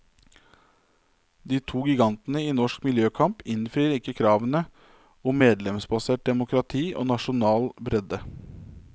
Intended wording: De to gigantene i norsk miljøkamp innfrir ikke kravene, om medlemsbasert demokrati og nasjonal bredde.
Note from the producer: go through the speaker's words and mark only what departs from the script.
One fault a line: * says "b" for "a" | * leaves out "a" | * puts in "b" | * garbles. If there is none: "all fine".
all fine